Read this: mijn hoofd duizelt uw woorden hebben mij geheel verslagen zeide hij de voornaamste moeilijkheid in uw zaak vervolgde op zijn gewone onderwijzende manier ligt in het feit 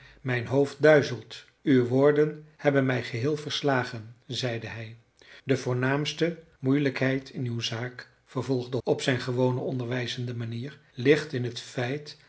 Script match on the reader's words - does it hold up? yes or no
yes